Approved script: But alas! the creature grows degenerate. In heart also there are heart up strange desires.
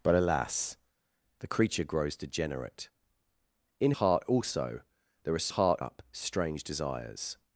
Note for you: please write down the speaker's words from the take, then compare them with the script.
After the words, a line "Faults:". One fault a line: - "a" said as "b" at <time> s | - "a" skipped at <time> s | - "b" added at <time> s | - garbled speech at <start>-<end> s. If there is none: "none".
But alas! the creature grows degenerate. In heart also there are heart up strange desires.
Faults:
none